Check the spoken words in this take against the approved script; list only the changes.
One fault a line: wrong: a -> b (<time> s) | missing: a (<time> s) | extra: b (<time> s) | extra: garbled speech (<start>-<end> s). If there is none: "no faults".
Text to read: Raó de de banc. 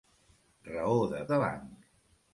no faults